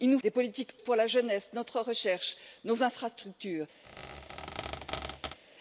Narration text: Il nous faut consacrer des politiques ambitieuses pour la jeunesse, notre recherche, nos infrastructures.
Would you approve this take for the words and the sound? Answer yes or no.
no